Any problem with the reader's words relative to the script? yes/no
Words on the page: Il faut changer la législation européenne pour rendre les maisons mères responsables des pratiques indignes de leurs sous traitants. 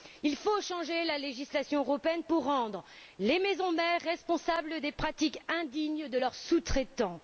no